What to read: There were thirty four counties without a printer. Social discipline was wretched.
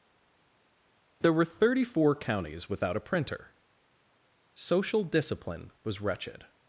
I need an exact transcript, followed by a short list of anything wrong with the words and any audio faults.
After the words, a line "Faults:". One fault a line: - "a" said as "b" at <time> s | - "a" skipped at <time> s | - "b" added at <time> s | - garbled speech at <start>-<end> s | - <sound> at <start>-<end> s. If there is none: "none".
There were thirty four counties without a printer. Social discipline was wretched.
Faults:
none